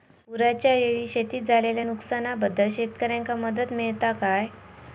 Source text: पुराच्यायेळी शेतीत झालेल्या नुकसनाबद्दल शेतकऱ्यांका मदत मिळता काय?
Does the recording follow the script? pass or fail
pass